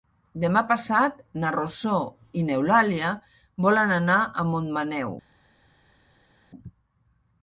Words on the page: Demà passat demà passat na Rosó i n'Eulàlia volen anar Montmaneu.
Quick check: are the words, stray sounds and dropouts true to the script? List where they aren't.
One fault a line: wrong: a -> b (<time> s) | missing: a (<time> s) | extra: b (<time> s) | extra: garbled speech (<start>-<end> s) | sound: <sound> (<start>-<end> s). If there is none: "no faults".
missing: demà passat (1.2 s)
extra: a (4.2 s)